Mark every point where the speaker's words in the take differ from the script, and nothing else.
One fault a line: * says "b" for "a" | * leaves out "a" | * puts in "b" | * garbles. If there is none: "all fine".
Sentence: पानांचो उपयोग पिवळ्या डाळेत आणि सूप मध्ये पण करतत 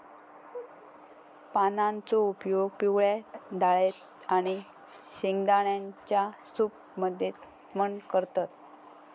* puts in "शेंगदाण्यांच्या"